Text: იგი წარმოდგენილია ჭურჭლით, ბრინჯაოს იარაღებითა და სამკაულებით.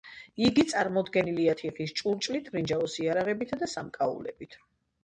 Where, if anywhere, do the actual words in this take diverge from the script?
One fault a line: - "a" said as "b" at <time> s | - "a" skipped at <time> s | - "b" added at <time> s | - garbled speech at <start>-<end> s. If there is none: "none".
- "თიხის" added at 1.6 s